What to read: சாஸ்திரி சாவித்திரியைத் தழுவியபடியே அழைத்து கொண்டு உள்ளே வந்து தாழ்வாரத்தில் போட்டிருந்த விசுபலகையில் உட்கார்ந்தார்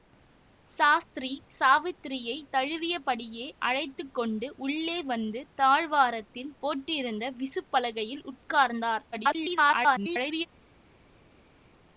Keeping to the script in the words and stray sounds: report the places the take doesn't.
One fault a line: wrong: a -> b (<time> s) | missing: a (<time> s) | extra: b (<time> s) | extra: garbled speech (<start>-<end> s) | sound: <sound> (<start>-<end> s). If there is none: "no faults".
extra: garbled speech (9.1-10.5 s)